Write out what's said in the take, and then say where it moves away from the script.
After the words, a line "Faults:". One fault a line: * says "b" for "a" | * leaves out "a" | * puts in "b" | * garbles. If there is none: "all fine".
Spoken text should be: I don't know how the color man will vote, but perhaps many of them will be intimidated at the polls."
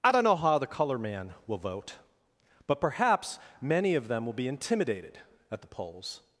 I don't know how the color man will vote, but perhaps many of them will be intimidated at the polls."
Faults:
all fine